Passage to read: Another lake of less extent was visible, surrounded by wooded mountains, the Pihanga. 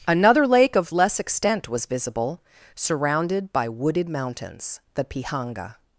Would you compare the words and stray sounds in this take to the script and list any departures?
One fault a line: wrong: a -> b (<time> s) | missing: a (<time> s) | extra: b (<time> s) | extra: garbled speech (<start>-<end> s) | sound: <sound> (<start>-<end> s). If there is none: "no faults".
no faults